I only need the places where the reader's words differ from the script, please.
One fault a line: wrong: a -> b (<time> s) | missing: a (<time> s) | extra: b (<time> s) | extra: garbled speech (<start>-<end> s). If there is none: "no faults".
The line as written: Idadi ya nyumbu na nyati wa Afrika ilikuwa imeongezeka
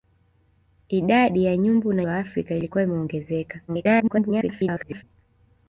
missing: nyati (2.0 s)
extra: garbled speech (3.7-5.0 s)